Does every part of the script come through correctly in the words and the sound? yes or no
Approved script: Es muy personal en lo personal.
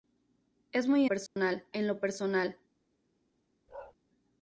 no